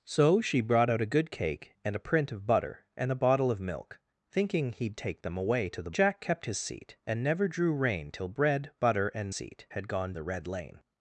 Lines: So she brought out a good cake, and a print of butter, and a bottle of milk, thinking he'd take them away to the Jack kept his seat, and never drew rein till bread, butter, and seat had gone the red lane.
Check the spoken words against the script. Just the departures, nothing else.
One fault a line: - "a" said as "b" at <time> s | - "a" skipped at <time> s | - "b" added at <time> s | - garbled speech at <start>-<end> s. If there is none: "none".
none